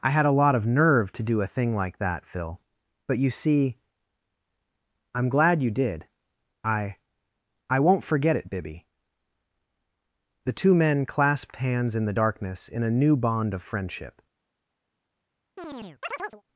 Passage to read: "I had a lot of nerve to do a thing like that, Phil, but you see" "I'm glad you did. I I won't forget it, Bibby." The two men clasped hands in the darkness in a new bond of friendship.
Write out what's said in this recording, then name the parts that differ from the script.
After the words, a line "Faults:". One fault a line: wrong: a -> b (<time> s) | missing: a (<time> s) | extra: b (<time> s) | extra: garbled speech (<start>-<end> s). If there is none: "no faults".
"I had a lot of nerve to do a thing like that, Phil, but you see" "I'm glad you did. I I won't forget it, Bibby." The two men clasped hands in the darkness in a new bond of friendship.
Faults:
no faults